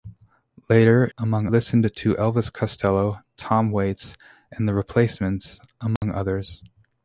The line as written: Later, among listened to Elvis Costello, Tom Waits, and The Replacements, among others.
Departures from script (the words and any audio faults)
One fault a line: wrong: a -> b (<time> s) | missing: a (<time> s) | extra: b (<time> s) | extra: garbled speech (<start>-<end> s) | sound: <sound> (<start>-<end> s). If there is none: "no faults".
sound: dropout (6.0-6.0 s)